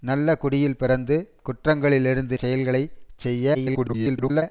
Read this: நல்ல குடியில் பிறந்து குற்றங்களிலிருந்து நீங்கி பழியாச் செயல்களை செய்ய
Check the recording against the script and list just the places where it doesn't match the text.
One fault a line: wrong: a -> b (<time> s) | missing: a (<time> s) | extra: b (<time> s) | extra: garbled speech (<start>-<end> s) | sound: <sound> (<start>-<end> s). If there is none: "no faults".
missing: நீங்கி பழியாச் (2.4 s)
extra: garbled speech (3.5-4.4 s)